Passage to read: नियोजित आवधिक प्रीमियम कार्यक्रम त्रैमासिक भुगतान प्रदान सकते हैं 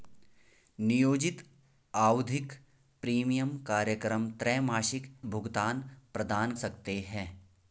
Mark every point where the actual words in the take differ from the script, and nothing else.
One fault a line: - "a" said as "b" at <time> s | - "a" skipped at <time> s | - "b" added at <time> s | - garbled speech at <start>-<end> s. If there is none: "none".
none